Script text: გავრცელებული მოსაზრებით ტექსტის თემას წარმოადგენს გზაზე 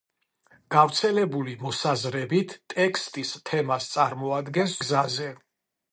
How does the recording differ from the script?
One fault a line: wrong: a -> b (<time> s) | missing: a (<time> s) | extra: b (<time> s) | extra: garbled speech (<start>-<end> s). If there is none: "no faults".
no faults